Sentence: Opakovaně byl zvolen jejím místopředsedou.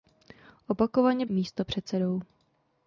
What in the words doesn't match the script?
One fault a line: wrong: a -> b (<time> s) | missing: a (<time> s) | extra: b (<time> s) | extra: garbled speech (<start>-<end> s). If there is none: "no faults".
missing: byl zvolen jejím (1.2 s)